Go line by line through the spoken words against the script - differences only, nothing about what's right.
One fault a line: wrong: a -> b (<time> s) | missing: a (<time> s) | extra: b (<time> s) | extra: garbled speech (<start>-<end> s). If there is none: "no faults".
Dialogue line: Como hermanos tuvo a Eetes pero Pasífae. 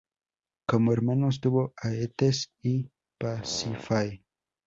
wrong: pero -> y (2.6 s)